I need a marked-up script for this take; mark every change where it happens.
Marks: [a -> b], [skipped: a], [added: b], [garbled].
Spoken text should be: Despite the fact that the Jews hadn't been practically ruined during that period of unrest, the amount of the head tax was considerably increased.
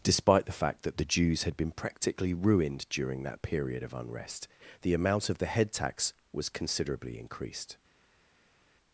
Despite the fact that the Jews [hadn't -> had] been practically ruined during that period of unrest, the amount of the head tax was considerably increased.